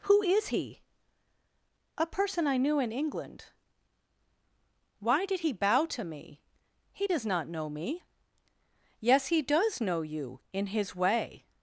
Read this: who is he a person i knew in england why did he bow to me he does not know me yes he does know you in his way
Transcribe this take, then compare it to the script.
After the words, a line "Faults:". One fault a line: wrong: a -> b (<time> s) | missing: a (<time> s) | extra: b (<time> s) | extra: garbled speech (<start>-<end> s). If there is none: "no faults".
who is he a person i knew in england why did he bow to me he does not know me yes he does know you in his way
Faults:
no faults